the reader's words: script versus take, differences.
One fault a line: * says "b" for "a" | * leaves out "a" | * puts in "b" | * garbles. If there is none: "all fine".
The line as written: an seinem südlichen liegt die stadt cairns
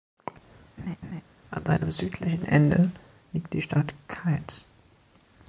* puts in "ende"